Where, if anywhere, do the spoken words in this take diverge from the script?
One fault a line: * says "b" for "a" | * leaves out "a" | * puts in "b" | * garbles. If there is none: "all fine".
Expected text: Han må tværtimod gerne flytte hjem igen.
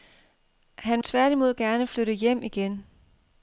* leaves out "må"